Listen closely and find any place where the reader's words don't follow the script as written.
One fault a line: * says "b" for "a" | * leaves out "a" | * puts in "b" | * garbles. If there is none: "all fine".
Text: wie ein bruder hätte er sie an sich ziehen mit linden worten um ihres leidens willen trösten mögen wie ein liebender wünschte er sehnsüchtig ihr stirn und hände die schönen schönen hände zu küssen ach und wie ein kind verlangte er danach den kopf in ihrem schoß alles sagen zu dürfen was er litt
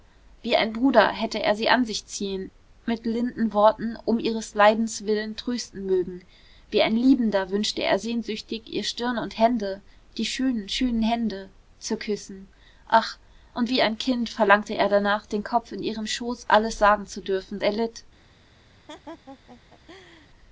* leaves out "was"